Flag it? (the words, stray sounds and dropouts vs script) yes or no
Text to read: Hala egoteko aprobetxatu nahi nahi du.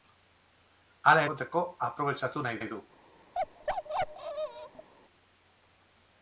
yes